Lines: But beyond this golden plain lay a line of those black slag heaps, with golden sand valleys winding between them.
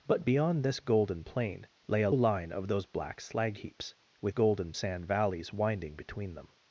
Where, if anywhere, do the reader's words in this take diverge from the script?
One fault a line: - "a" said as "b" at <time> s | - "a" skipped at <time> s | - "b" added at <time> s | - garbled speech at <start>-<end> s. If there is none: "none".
none